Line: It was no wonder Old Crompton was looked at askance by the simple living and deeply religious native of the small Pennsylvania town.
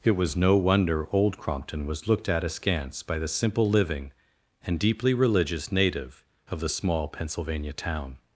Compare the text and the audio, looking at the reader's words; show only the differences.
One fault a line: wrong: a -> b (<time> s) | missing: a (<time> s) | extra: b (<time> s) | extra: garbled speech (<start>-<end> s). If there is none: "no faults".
no faults